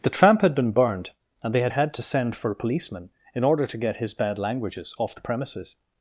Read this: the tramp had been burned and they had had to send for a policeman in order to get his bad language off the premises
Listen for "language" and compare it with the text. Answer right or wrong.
wrong